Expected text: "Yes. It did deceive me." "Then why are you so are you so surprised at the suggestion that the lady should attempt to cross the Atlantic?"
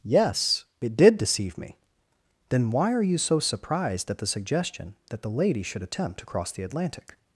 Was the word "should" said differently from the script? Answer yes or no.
no